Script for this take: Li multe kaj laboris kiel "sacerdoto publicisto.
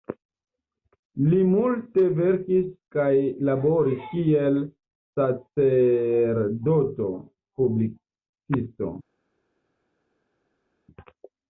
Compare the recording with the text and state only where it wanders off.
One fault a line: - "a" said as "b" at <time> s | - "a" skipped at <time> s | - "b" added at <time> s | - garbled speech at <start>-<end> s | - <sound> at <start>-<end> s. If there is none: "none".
- "verkis" added at 2.2 s